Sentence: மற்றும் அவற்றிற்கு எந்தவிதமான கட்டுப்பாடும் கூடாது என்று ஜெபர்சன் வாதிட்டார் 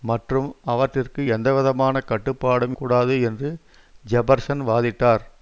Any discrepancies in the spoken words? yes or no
no